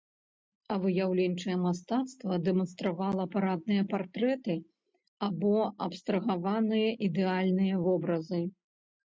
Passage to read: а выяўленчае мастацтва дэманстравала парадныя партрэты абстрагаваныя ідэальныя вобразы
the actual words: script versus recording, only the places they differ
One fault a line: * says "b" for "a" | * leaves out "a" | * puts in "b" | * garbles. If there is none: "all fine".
* puts in "або"